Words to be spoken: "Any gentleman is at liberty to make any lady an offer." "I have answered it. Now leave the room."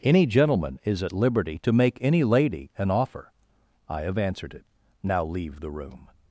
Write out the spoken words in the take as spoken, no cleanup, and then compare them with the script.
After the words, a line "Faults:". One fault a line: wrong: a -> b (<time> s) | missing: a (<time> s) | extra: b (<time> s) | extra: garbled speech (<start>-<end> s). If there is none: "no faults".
"Any gentleman is at liberty to make any lady an offer." "I have answered it. Now leave the room."
Faults:
no faults